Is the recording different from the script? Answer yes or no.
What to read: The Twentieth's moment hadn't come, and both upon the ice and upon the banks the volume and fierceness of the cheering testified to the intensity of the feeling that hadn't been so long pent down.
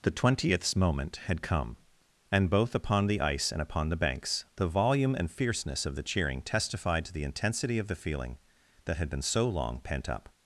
yes